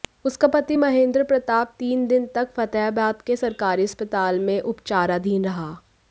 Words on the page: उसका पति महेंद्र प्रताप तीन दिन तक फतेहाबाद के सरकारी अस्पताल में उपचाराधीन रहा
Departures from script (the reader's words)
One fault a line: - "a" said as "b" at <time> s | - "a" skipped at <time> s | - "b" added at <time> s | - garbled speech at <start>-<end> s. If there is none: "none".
none